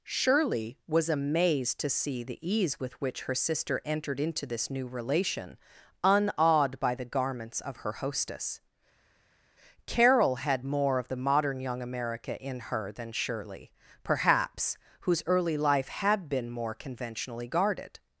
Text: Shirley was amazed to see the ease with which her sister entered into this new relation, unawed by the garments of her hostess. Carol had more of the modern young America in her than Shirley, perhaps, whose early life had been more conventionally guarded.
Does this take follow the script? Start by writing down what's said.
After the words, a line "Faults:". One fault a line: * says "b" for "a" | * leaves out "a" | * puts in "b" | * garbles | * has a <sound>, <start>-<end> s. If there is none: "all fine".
Shirley was amazed to see the ease with which her sister entered into this new relation, unawed by the garments of her hostess. Carol had more of the modern young America in her than Shirley, perhaps, whose early life had been more conventionally guarded.
Faults:
all fine